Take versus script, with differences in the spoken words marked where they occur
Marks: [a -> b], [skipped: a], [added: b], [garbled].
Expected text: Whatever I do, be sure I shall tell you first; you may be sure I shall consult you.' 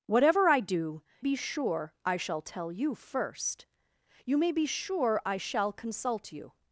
Whatever I do, be sure I shall tell you first; you may be sure I shall consult you.'